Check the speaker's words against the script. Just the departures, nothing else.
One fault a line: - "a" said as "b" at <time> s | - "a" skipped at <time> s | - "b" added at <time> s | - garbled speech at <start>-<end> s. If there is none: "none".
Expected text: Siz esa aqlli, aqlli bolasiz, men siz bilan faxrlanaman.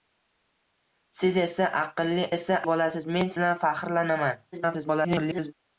- "aqlli" said as "esa" at 2.3 s
- "siz" skipped at 3.4 s
- garbled speech at 4.5-5.5 s